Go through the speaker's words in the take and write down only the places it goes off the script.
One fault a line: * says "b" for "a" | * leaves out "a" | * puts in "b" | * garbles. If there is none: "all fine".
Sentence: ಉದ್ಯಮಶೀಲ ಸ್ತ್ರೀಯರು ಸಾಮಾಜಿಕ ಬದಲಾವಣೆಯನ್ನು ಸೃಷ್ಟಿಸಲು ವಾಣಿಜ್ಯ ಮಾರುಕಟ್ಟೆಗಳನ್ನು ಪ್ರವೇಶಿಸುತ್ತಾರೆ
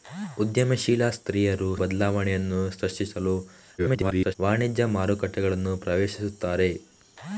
* leaves out "ಸಾಮಾಜಿಕ"
* garbles